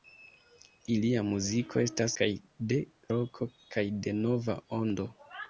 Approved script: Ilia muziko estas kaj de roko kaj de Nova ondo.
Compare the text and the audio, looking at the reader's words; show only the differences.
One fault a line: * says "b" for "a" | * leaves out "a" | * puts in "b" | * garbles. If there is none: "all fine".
all fine